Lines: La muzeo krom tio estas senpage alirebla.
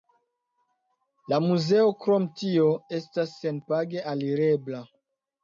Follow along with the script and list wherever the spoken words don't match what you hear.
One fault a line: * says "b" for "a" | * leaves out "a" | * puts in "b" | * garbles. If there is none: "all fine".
all fine